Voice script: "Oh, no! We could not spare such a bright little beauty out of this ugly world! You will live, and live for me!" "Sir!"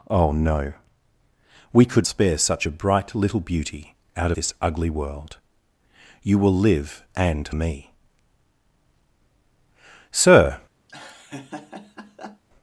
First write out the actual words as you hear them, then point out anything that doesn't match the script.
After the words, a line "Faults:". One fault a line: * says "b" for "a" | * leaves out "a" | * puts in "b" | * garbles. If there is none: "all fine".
"Oh, no! We could spare such a bright little beauty out this ugly world! You will live, and me!" "Sir!"
Faults:
* leaves out "not"
* leaves out "of"
* leaves out "live for"